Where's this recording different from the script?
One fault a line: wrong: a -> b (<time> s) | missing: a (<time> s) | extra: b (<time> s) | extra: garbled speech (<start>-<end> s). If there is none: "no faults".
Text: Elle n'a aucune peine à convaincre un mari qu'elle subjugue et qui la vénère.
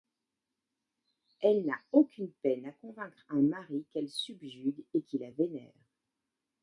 no faults